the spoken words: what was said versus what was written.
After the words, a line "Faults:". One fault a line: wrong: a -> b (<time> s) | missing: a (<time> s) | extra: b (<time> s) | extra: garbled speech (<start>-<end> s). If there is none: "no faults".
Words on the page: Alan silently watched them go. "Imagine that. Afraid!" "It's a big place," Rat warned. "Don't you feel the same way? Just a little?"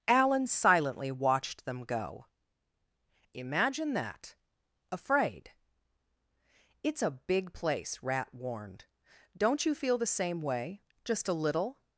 Alan silently watched them go. "Imagine that. Afraid!" "It's a big place," Rat warned. "Don't you feel the same way? Just a little?"
Faults:
no faults